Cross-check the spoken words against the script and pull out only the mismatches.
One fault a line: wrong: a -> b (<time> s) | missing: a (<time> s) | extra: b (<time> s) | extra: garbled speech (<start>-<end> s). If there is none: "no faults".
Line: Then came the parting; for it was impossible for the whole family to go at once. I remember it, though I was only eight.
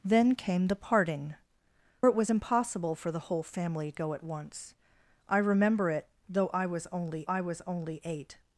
missing: for (1.4 s)
missing: to (3.9 s)
extra: I was only (7.2 s)